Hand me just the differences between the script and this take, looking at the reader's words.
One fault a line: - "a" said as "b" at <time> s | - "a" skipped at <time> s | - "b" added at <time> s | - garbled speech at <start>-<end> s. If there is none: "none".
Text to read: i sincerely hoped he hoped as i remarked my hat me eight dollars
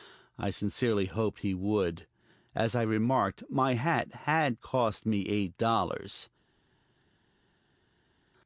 - "hoped" said as "would" at 1.5 s
- "had cost" added at 4.2 s